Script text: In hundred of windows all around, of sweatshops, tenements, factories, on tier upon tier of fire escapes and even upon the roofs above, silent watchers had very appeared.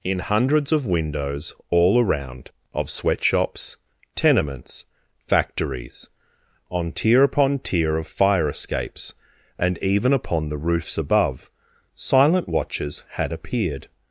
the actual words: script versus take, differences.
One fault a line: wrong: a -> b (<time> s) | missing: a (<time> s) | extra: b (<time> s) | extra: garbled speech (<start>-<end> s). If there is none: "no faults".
wrong: hundred -> hundreds (0.2 s)
missing: very (13.3 s)